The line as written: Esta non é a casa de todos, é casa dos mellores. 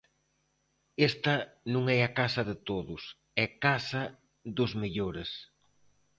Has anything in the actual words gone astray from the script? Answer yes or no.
no